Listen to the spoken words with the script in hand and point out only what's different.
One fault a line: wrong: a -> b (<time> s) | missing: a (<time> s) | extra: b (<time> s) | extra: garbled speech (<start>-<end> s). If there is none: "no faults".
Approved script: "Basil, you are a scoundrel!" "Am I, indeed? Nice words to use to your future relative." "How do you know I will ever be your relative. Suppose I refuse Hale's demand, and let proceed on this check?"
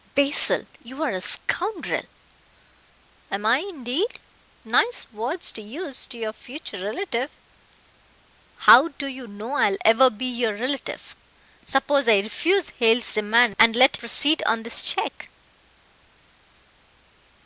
no faults